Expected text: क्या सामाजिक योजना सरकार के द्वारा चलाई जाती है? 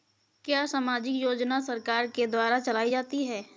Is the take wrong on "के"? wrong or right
right